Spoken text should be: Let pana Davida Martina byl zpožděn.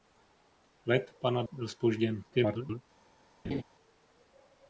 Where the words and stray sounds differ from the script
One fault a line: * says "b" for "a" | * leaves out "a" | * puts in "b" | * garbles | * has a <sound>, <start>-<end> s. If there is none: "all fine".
* leaves out "Davida Martina"
* garbles
* has a laugh, 3.4-3.6 s